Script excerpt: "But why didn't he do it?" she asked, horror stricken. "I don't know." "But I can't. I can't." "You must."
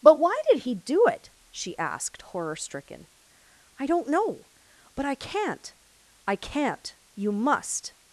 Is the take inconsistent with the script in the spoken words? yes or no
yes